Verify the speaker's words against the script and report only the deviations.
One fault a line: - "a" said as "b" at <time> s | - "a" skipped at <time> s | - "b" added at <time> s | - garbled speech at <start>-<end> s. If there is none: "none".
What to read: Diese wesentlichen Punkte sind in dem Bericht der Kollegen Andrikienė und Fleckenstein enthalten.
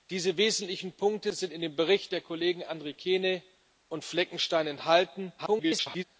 - garbled speech at 5.4-6.0 s